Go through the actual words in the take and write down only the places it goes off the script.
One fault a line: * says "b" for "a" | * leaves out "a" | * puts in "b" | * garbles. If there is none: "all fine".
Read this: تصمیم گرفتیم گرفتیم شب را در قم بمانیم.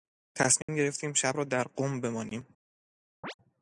* leaves out "گرفتیم"